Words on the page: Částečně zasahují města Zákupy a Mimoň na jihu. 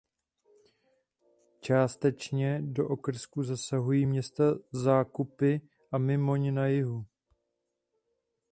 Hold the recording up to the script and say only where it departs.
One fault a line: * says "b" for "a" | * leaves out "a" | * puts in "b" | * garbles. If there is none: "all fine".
* puts in "do okrsku"